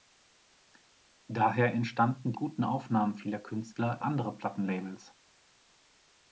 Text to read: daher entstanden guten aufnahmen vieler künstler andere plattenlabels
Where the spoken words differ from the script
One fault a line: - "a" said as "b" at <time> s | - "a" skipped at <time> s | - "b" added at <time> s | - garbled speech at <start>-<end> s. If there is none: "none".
none